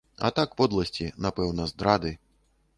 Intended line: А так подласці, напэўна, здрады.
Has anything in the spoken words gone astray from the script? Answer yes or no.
no